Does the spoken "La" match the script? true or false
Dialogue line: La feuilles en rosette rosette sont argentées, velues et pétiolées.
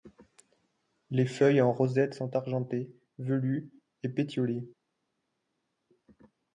false